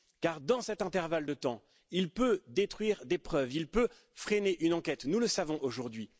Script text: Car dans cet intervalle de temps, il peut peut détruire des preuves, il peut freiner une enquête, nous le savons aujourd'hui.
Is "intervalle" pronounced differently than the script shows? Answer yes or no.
no